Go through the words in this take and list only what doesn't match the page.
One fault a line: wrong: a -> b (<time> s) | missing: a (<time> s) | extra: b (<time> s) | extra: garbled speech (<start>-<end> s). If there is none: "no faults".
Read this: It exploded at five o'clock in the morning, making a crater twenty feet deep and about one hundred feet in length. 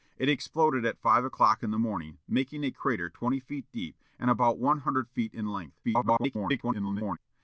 extra: garbled speech (5.8-7.2 s)